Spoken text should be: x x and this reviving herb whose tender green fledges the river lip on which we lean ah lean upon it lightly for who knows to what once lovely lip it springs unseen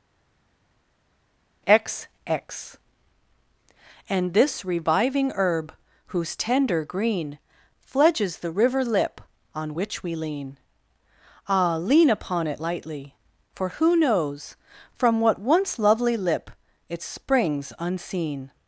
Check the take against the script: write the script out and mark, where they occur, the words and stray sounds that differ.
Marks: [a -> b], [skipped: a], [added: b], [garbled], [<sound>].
x x and this reviving herb whose tender green fledges the river lip on which we lean ah lean upon it lightly for who knows [to -> from] what once lovely lip it springs unseen